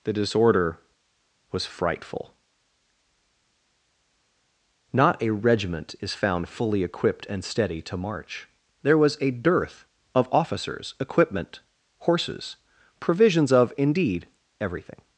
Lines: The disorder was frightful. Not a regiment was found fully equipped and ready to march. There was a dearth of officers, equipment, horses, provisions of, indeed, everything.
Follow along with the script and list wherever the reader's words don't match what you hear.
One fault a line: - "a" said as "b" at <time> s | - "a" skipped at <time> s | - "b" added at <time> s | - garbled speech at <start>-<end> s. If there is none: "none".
- "was" said as "is" at 6.0 s
- "ready" said as "steady" at 7.4 s